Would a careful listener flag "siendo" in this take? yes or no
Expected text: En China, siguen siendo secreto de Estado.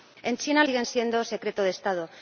no